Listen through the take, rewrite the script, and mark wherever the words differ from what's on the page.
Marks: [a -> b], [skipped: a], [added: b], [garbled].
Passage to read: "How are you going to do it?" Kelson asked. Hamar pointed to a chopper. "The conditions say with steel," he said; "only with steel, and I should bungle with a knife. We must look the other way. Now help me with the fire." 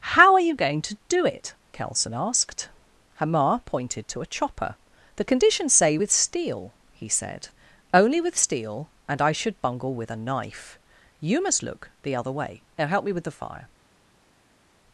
"How are you going to do it?" Kelson asked. Hamar pointed to a chopper. "The conditions say with steel," he said; "only with steel, and I should bungle with a knife. [We -> You] must look the other way. Now help me with the fire."